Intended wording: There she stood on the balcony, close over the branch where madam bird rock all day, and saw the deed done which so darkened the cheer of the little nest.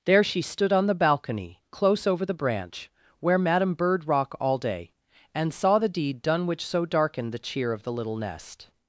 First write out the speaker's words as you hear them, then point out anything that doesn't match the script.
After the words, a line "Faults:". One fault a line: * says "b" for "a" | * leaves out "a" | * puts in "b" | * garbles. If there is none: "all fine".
There she stood on the balcony, close over the branch where madam bird rock all day, and saw the deed done which so darkened the cheer of the little nest.
Faults:
all fine